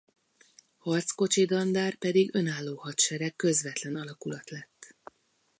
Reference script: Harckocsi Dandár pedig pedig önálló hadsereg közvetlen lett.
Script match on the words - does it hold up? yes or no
no